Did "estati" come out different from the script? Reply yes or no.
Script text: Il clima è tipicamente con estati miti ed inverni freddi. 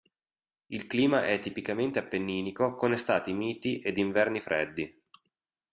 no